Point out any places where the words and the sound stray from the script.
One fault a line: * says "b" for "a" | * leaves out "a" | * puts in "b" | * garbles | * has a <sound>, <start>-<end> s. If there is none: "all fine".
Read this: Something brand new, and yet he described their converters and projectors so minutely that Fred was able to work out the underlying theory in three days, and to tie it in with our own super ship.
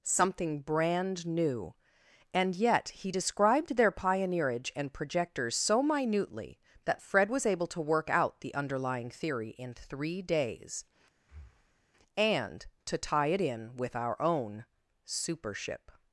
* says "pioneerage" for "converters"
* has a breath, 11.2-11.9 s